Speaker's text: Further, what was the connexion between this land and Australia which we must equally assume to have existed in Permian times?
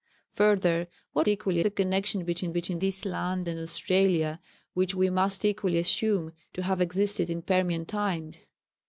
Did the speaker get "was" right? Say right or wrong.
wrong